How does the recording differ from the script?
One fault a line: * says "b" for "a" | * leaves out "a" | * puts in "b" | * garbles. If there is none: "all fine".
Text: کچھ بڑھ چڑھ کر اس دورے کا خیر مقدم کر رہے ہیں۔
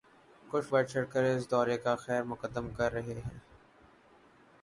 all fine